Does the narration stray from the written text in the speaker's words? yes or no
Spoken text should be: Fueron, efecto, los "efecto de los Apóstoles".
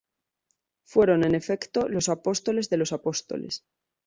yes